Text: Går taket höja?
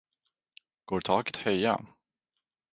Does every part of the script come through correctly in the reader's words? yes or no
yes